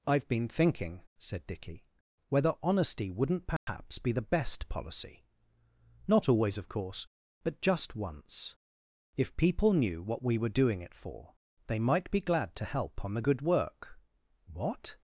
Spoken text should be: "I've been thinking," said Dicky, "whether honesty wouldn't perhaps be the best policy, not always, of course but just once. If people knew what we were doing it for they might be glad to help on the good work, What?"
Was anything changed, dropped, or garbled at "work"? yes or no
no